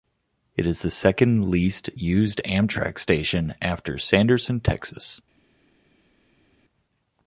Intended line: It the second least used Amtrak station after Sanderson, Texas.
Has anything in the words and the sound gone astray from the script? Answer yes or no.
yes